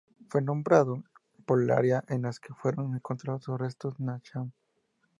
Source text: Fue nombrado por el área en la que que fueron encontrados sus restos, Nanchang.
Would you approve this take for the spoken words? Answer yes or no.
no